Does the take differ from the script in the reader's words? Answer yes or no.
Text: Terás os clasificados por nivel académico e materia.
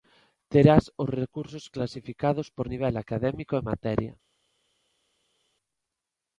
yes